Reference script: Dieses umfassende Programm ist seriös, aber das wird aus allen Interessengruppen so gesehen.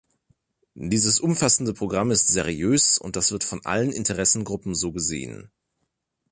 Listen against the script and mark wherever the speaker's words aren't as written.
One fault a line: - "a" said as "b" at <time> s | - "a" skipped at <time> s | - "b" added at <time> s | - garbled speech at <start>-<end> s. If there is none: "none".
- "aber" said as "und" at 3.0 s
- "aus" said as "von" at 3.4 s